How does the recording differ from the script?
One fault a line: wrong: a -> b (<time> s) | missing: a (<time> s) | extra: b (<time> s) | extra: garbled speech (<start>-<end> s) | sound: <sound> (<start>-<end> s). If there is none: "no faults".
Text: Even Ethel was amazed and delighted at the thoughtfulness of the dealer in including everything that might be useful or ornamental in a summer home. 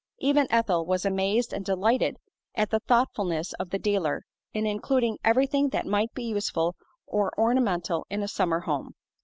no faults